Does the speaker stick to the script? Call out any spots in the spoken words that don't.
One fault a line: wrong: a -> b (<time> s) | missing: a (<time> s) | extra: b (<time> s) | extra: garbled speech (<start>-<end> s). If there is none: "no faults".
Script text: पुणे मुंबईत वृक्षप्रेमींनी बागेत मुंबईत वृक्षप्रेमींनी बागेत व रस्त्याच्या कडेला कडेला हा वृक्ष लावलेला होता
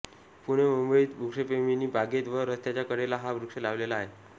missing: मुंबईत वृक्षप्रेमींनी बागेत (2.3 s)
missing: कडेला (3.2 s)
wrong: होता -> आहे (4.0 s)